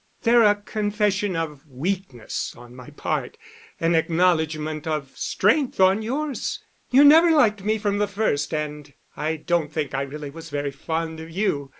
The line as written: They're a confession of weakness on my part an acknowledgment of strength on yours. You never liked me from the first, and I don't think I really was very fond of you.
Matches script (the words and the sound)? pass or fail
pass